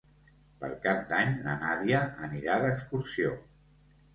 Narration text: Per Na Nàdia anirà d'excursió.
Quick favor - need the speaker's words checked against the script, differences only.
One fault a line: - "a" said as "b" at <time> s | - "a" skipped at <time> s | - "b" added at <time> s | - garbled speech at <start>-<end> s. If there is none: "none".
- "Cap d'Any" added at 0.8 s